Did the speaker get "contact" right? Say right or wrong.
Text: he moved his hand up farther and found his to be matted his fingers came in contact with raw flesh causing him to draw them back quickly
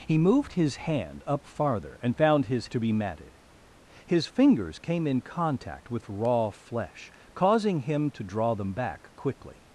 right